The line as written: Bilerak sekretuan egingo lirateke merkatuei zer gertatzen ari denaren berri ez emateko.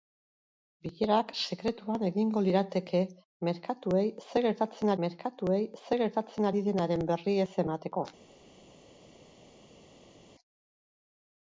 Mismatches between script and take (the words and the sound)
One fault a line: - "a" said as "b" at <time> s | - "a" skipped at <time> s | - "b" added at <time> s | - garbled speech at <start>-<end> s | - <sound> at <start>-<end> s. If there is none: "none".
- "merkatuei zer gertatzen" added at 5.0 s